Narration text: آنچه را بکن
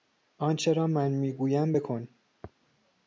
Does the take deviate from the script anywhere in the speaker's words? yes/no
yes